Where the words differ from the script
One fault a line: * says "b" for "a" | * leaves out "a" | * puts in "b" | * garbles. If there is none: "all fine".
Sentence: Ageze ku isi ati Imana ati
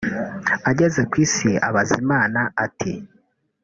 * says "abaza" for "ati"